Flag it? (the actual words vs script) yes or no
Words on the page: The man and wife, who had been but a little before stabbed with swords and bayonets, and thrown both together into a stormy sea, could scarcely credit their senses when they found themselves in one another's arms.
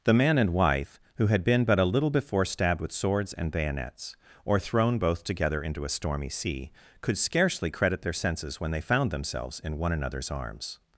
yes